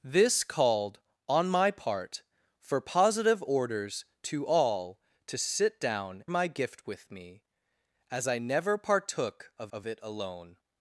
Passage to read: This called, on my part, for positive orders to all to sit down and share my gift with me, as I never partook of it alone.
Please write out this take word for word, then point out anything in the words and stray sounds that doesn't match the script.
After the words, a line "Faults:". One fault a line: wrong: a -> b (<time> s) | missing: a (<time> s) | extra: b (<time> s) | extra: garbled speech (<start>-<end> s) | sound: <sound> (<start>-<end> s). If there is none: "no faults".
This called, on my part, for positive orders to all to sit down my gift with me, as I never partook of of it alone.
Faults:
missing: and share (6.2 s)
extra: of (9.7 s)